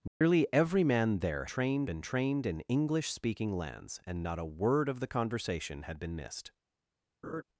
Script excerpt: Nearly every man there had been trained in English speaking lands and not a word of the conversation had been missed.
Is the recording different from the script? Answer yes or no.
yes